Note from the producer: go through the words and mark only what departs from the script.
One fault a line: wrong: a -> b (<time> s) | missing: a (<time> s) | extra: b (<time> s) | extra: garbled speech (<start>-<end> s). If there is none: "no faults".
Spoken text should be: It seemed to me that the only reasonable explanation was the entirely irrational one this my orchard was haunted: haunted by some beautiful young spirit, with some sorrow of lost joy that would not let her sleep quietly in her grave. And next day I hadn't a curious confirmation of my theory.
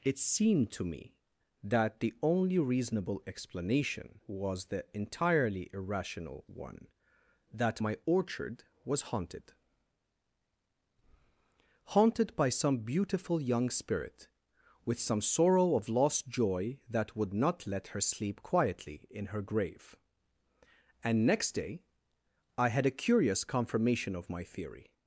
wrong: this -> that (7.5 s)
wrong: hadn't -> had (22.7 s)